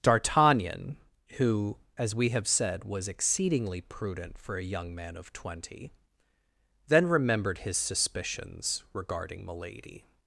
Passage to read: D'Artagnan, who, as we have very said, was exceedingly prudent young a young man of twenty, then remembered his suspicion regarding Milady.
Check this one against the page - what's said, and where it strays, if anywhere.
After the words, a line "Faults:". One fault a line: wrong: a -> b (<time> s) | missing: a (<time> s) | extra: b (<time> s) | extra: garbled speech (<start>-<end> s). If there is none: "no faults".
D'Artagnan, who, as we have said, was exceedingly prudent for a young man of twenty, then remembered his suspicions regarding Milady.
Faults:
missing: very (2.5 s)
wrong: young -> for (4.4 s)
wrong: suspicion -> suspicions (7.8 s)